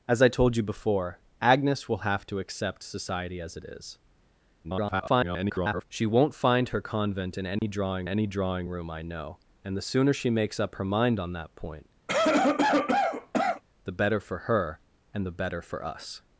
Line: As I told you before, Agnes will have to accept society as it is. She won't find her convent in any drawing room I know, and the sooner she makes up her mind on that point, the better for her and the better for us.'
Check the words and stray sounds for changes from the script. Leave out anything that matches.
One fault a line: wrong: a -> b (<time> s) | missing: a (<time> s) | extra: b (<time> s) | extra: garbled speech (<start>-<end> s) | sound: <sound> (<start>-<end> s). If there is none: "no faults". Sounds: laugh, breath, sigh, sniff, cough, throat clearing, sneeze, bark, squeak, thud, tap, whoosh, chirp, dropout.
extra: garbled speech (4.6-5.8 s)
sound: dropout (7.6-7.6 s)
extra: any drawing (8.0 s)
sound: cough (12.1-13.6 s)